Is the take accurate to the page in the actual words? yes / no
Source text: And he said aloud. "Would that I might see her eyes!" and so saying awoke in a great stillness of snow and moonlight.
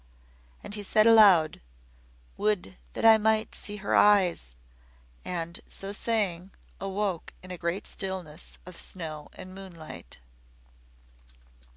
yes